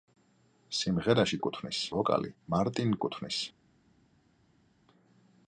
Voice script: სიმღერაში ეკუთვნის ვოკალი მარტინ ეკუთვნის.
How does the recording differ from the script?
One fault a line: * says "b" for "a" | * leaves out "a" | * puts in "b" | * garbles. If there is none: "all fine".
all fine